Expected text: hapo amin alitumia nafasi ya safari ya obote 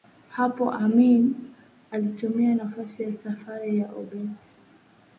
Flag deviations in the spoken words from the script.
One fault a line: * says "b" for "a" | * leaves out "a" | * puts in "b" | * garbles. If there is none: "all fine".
all fine